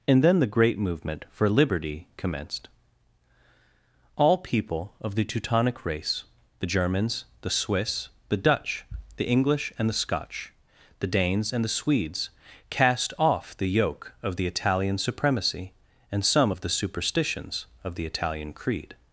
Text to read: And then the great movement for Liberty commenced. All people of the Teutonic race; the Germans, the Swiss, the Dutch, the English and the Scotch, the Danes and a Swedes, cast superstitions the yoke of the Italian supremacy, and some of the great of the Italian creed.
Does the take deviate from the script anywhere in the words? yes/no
yes